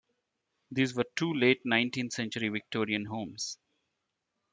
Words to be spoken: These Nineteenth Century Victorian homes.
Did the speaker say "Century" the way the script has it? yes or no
yes